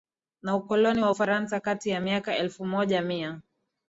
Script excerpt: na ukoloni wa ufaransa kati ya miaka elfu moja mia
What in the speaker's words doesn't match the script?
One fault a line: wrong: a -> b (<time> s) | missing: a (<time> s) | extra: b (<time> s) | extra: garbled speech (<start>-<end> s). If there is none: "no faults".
no faults